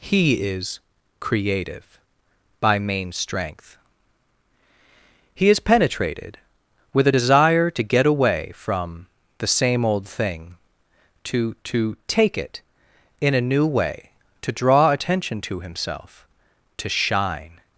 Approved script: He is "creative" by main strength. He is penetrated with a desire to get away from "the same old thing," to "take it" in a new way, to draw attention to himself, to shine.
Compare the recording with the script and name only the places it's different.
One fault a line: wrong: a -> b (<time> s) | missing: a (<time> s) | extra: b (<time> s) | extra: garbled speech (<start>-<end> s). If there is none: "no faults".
extra: to (11.6 s)